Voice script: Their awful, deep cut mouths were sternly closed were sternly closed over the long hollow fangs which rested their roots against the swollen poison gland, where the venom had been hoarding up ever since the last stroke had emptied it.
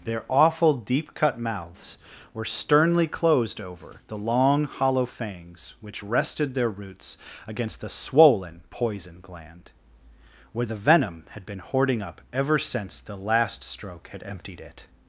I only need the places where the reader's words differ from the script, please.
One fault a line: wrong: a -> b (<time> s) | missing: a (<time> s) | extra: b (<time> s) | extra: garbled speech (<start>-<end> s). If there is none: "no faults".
missing: were sternly closed (3.6 s)